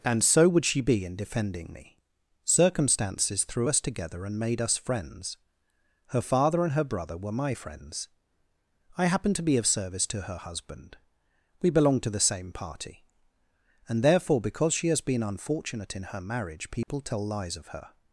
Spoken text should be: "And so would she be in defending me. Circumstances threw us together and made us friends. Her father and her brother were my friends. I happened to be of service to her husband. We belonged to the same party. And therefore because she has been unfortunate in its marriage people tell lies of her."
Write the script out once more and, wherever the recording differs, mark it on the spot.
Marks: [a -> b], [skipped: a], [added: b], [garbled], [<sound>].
"And so would she be in defending me. Circumstances threw us together and made us friends. Her father and her brother were my friends. I happened to be of service to her husband. We belonged to the same party. And therefore because she has been unfortunate in [its -> her] marriage people [dropout] tell lies of her."